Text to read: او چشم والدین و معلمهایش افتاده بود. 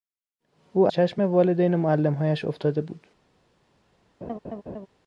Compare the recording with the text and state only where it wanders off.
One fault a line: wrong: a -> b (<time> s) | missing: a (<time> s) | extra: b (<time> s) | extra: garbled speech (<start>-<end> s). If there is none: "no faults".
no faults